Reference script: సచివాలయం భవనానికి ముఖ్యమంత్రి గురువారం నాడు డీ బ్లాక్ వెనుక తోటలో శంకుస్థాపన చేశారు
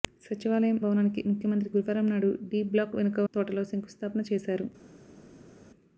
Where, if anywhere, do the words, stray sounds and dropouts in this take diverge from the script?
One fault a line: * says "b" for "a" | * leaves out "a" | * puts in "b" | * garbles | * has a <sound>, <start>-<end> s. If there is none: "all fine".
all fine